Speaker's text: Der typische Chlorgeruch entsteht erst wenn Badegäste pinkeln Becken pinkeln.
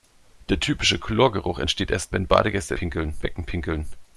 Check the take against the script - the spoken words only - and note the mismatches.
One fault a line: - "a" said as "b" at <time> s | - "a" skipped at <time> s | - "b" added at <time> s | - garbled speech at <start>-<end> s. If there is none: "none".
none